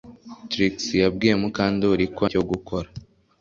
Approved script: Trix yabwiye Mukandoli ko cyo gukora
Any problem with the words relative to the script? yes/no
no